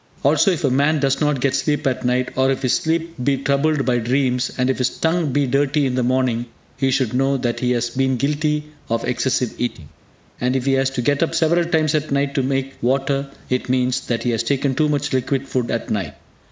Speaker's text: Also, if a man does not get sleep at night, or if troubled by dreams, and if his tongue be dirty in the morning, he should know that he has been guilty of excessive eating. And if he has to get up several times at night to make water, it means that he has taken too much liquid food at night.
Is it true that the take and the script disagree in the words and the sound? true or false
true